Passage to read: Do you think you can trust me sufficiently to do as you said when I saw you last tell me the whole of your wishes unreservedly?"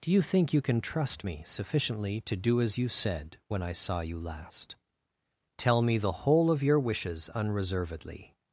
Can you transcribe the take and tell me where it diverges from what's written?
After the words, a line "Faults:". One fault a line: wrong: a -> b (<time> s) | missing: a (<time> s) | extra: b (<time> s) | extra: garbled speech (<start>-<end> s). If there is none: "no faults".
Do you think you can trust me sufficiently to do as you said when I saw you last tell me the whole of your wishes unreservedly?"
Faults:
no faults